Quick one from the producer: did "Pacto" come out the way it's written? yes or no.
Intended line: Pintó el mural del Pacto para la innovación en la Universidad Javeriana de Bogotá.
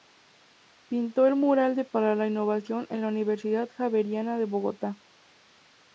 no